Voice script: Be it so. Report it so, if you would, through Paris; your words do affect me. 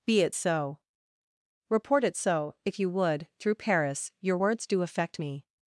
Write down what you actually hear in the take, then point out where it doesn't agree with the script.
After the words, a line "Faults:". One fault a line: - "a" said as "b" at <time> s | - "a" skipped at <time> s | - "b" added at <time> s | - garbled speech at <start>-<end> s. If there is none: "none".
Be it so. Report it so, if you would, through Paris; your words do affect me.
Faults:
none